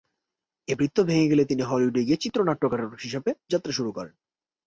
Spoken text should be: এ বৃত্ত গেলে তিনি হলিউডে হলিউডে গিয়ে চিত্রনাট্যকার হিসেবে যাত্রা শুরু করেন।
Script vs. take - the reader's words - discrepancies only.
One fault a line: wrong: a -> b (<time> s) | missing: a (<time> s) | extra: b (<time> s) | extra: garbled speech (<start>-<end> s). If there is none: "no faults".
extra: ভেঙে (1.0 s)
missing: হলিউডে (2.0 s)